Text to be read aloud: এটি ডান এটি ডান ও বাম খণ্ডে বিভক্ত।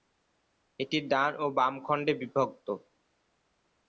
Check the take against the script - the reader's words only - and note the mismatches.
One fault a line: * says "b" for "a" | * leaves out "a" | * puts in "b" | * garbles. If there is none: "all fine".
* leaves out "এটি ডান"